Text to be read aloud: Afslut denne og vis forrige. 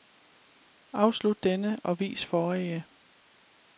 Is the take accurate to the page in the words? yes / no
yes